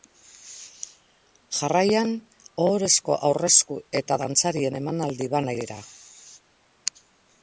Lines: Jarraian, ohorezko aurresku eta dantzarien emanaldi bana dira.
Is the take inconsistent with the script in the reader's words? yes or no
no